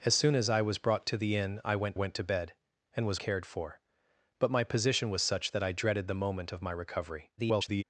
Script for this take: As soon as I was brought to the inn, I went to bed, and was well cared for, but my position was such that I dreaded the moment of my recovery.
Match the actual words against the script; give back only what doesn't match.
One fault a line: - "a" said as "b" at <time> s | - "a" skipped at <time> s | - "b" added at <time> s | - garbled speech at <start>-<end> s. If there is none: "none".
- "went" added at 1.9 s
- "well" skipped at 3.2 s
- garbled speech at 7.4-7.8 s